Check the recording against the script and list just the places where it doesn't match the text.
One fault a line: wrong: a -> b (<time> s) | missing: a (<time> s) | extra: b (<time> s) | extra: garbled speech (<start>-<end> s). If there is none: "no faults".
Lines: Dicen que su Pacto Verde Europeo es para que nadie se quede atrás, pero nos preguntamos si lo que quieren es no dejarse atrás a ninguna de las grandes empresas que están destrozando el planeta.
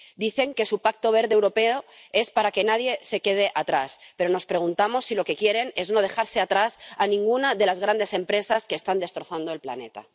no faults